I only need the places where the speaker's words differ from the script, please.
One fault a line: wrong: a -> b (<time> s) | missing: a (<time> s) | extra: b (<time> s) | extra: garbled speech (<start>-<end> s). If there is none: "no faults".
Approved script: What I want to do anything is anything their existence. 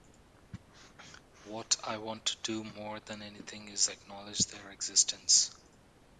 extra: more than (2.6 s)
wrong: anything -> acknowledge (3.9 s)